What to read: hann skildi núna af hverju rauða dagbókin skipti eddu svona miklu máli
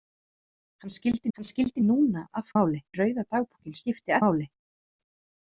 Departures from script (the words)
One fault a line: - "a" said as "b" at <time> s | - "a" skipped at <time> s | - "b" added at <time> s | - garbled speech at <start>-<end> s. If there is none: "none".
- "hann skildi" added at 1.4 s
- "hverju" said as "máli" at 2.6 s
- "eddu svona miklu" skipped at 4.2 s